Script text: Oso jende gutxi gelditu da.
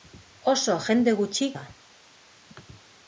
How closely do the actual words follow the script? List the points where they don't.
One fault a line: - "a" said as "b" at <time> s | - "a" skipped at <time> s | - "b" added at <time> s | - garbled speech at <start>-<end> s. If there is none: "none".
- "gelditu" skipped at 1.5 s